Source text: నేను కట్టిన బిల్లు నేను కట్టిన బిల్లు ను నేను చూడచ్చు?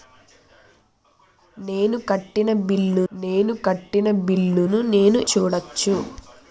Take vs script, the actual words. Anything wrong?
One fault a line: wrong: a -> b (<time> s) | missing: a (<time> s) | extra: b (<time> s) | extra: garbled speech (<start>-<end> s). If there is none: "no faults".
no faults